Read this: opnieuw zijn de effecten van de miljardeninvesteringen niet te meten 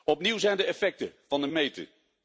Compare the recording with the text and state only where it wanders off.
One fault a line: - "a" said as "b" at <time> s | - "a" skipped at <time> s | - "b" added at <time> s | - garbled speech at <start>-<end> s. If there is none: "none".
- "miljardeninvesteringen niet te" skipped at 1.5 s